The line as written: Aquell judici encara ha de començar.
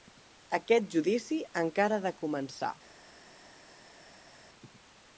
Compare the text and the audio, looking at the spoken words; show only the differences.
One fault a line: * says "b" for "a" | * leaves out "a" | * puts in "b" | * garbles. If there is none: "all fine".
* says "Aquest" for "Aquell"